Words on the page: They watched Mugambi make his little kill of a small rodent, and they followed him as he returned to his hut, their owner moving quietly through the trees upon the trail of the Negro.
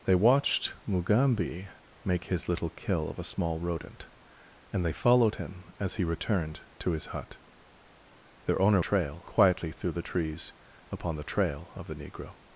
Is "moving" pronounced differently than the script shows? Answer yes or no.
yes